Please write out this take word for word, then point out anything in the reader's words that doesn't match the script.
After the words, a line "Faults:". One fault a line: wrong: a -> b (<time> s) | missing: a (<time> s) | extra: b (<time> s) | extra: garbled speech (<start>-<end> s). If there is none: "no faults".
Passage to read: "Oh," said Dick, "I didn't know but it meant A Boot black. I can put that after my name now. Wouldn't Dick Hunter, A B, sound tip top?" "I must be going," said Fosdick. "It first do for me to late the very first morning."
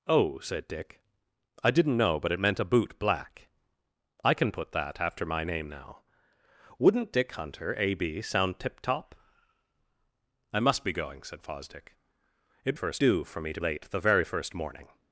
"Oh," said Dick, "I didn't know but it meant A Boot black. I can put that after my name now. Wouldn't Dick Hunter, A B, sound tip top?" "I must be going," said Fosdick. "It first do for me to late the very first morning."
Faults:
no faults